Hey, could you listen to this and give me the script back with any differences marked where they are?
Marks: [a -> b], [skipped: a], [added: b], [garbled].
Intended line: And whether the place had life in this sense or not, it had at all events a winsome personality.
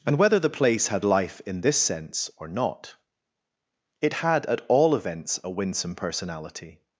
And whether the place had life in this sense or not, it had at all events a winsome personality.